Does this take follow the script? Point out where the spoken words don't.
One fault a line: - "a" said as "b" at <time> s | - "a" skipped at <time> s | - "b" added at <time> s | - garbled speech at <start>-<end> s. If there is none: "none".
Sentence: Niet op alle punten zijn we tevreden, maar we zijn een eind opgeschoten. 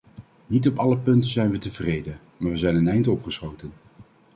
none